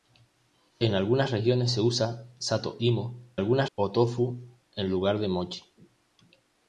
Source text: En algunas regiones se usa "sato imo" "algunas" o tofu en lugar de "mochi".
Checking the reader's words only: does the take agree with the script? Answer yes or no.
yes